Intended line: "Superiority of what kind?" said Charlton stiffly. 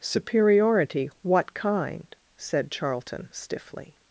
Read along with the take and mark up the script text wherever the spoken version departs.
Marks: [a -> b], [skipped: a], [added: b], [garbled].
"Superiority [skipped: of] what kind?" said Charlton stiffly.